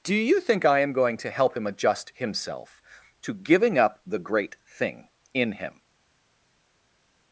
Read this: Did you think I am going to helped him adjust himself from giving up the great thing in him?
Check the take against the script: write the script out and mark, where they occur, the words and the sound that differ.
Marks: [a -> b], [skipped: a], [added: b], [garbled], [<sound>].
[Did -> Do] you think I am going to [helped -> help] him adjust himself [from -> to] giving up the great thing in him?